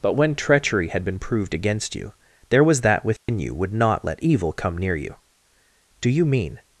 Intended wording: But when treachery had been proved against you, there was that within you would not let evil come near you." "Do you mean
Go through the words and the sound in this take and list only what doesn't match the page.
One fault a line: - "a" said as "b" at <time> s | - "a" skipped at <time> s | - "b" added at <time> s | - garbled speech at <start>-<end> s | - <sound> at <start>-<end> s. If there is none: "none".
- dropout at 3.2-3.3 s